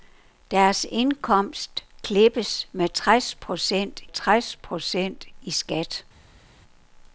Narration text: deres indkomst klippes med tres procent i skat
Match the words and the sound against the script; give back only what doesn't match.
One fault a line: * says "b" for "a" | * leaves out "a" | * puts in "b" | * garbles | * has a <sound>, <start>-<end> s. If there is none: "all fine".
* puts in "tres procent"